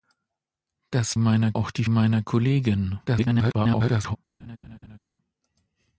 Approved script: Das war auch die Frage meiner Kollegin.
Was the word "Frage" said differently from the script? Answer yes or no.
yes